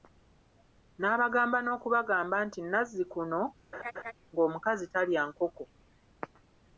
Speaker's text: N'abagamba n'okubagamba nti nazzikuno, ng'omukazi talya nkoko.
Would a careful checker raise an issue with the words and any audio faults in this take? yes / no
yes